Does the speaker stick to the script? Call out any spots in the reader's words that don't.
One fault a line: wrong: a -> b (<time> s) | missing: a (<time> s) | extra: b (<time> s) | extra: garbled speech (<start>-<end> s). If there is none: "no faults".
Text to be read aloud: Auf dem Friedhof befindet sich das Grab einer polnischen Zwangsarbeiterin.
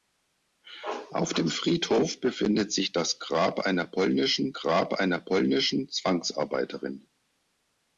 extra: Grab einer polnischen (4.5 s)